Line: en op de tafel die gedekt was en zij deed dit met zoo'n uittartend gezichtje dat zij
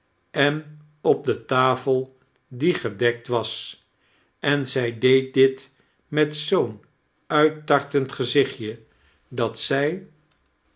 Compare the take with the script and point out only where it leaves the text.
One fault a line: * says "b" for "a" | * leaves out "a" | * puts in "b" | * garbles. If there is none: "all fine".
all fine